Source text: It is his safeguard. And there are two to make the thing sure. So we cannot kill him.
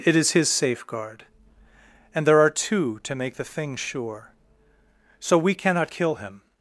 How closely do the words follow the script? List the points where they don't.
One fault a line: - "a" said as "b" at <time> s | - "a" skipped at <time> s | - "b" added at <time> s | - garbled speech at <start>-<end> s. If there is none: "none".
none